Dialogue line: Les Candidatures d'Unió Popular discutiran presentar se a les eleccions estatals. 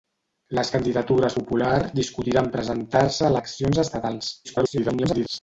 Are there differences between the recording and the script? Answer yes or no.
yes